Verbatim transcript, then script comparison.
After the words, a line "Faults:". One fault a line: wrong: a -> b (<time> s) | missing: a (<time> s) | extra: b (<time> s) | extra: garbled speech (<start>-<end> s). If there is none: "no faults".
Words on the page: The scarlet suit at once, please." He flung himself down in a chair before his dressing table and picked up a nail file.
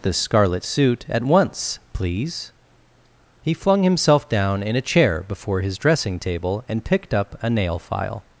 The scarlet suit at once, please." He flung himself down in a chair before his dressing table and picked up a nail file.
Faults:
no faults